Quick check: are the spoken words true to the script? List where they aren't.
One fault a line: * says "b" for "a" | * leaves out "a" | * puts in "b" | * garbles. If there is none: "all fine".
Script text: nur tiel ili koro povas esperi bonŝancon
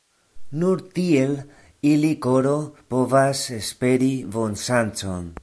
all fine